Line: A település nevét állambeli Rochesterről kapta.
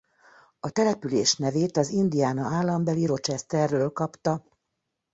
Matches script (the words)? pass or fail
fail